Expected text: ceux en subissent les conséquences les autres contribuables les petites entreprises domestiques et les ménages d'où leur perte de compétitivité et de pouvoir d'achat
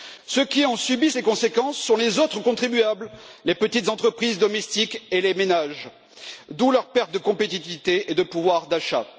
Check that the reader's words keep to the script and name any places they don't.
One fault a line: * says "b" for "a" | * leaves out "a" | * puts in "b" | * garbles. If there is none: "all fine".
* puts in "qui"
* puts in "sont"